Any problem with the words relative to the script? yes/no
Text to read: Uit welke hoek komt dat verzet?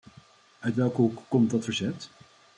no